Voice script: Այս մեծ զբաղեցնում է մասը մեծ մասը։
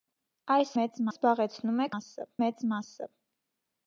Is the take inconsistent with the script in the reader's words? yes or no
no